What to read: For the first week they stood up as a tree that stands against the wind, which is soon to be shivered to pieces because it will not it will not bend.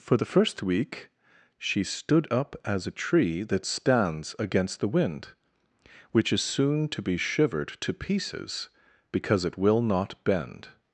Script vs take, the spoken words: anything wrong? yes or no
yes